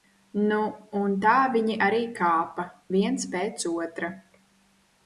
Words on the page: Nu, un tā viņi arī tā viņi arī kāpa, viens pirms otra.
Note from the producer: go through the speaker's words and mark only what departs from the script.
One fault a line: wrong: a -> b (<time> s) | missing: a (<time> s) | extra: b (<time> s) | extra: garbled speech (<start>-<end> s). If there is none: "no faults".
missing: tā viņi arī (2.0 s)
wrong: pirms -> pēc (3.4 s)